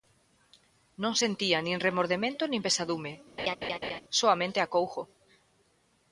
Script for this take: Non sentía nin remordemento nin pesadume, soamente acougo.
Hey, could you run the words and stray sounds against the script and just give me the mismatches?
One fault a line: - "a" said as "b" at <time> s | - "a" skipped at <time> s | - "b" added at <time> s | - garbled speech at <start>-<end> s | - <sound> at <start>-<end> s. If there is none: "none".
- laugh at 3.4-4.0 s